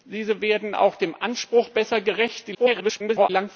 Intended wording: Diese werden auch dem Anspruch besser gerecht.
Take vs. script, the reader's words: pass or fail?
fail